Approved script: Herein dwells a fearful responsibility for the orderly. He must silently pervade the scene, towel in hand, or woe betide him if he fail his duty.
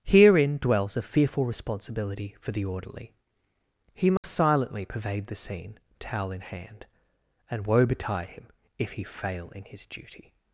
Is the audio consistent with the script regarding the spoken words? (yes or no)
no